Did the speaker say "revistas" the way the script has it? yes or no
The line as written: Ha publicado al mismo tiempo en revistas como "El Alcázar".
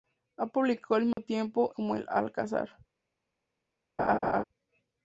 no